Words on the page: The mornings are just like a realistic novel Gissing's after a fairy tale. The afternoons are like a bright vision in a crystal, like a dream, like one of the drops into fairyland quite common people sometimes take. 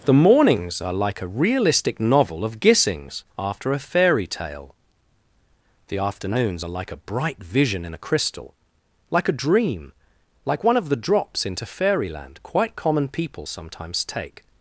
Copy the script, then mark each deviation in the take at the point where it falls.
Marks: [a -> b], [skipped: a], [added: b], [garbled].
The mornings are [skipped: just] like a realistic novel [added: of] Gissing's after a fairy tale. The afternoons are like a bright vision in a crystal, like a dream, like one of the drops into fairyland quite common people sometimes take.